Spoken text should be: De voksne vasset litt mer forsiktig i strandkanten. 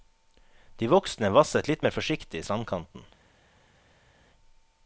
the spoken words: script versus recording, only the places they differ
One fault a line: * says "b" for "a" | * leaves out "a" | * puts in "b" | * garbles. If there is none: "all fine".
all fine